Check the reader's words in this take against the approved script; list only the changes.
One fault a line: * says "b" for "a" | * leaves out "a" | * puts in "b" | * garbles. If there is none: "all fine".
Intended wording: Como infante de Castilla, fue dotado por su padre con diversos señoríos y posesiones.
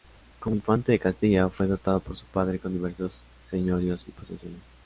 all fine